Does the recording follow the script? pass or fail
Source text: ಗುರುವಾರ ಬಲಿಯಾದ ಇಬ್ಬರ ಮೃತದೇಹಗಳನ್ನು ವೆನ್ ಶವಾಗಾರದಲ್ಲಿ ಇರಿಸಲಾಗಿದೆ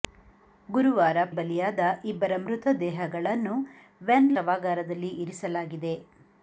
pass